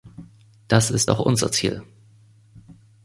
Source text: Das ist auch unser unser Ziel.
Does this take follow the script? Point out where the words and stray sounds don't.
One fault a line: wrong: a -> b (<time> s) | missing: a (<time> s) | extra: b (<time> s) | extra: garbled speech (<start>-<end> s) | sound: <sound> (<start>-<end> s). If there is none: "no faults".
missing: unser (1.5 s)